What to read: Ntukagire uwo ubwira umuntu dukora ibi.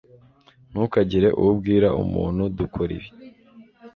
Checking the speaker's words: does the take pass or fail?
pass